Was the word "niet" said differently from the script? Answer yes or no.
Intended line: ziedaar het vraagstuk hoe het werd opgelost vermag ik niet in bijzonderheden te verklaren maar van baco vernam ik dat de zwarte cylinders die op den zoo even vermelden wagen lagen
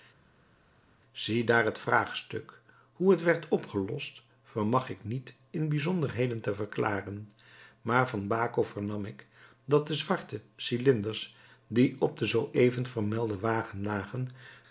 no